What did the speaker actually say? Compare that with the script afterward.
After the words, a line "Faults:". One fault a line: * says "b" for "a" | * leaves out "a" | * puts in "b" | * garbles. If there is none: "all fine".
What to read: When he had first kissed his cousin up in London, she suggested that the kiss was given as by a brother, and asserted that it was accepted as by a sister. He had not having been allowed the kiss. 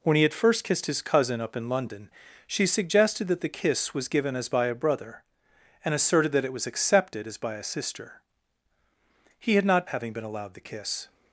When he had first kissed his cousin up in London, she suggested that the kiss was given as by a brother, and asserted that it was accepted as by a sister. He had not having been allowed the kiss.
Faults:
all fine